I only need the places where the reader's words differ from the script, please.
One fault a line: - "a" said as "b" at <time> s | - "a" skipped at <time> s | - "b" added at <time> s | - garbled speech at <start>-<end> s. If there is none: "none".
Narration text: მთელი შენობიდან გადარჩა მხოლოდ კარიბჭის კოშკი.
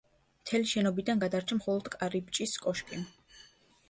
none